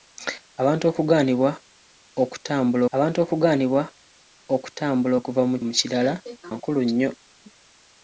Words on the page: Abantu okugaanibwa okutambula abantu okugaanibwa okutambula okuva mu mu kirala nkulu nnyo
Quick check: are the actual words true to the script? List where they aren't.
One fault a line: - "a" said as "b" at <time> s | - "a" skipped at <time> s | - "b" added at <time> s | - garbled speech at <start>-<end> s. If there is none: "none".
none